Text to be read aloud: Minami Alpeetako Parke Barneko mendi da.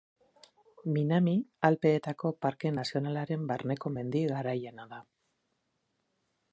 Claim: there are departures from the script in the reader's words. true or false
true